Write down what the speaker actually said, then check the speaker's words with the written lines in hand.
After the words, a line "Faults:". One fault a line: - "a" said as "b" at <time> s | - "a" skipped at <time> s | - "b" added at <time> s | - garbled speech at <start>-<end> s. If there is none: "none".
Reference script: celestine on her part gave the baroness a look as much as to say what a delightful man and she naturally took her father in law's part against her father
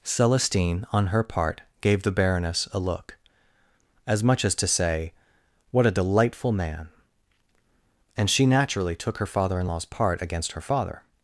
celestine on her part gave the baroness a look as much as to say what a delightful man and she naturally took her father in law's part against her father
Faults:
none